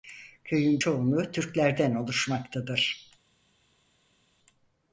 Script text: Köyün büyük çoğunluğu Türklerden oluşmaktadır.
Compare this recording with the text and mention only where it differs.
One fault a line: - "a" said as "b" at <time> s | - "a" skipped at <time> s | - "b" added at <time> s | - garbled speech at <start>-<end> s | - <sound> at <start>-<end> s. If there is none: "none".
- "büyük" skipped at 0.8 s